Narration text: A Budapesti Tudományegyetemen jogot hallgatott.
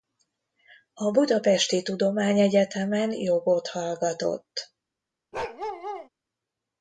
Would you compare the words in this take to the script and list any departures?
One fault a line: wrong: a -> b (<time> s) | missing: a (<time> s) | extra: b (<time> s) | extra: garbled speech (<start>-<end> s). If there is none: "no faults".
no faults